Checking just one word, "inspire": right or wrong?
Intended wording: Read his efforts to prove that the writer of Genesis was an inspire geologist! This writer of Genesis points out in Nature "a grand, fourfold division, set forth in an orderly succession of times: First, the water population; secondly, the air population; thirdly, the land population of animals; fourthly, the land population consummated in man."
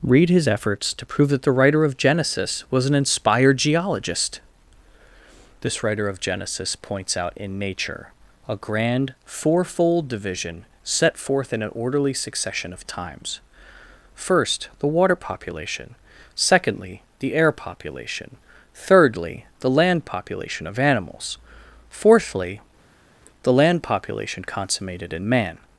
wrong